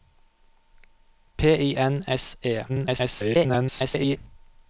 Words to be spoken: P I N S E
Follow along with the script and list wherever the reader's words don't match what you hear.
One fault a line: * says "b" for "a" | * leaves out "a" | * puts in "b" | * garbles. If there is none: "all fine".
* garbles